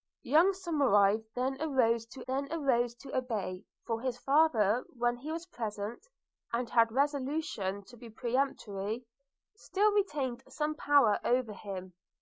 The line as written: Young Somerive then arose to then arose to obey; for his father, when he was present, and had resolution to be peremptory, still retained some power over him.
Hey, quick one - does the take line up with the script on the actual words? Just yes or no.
yes